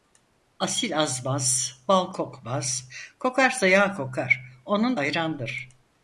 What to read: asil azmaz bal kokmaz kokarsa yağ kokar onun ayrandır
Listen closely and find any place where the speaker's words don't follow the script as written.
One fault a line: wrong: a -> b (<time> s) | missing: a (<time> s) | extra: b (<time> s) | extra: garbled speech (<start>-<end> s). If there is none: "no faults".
no faults